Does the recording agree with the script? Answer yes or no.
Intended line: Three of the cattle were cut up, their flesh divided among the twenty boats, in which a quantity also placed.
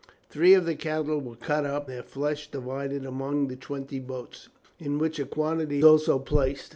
yes